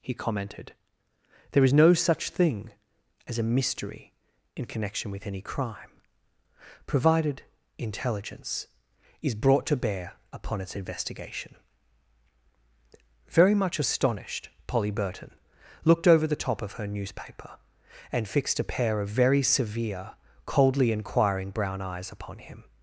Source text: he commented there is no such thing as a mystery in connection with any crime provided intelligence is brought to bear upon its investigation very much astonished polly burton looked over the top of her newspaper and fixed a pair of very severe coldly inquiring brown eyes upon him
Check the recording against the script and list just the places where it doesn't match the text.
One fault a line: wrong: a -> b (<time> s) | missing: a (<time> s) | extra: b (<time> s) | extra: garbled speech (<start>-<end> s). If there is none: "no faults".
no faults